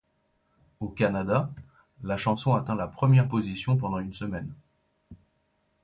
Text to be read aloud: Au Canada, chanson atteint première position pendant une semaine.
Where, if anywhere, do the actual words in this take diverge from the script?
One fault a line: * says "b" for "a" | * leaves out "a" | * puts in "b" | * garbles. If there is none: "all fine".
* puts in "la"
* puts in "la"